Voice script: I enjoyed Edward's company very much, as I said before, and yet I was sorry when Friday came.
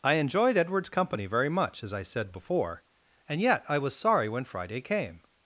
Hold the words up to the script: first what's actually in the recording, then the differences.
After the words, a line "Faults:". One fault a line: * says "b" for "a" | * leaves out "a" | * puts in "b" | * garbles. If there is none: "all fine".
I enjoyed Edward's company very much, as I said before, and yet I was sorry when Friday came.
Faults:
all fine